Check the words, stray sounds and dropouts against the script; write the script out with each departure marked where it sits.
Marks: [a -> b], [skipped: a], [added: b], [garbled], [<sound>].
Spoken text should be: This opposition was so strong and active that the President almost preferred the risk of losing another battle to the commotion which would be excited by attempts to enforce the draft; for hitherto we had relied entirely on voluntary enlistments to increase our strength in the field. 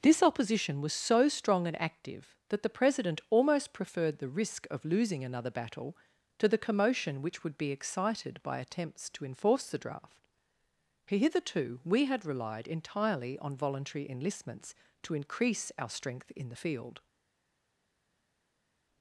This opposition was so strong and active that the President almost preferred the risk of losing another battle to the commotion which would be excited by attempts to enforce the draft; [skipped: for] hitherto we had relied entirely on voluntary enlistments to increase our strength in the field.